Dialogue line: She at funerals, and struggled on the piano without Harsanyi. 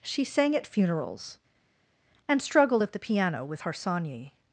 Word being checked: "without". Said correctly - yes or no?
no